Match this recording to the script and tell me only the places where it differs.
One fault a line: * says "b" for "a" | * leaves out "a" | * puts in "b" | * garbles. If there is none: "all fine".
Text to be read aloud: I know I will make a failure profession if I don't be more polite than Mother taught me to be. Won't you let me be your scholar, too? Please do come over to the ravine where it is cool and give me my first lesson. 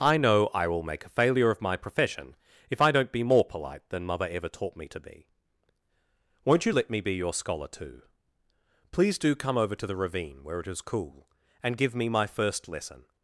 * puts in "of my"
* puts in "ever"